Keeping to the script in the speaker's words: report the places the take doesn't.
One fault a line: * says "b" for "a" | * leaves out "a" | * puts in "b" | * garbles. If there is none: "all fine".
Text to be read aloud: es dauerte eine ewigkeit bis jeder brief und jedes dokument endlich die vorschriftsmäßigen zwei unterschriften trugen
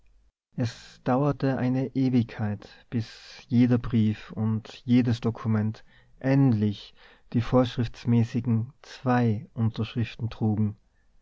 all fine